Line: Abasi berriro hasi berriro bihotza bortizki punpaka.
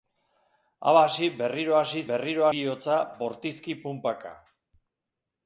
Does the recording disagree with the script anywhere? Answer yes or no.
no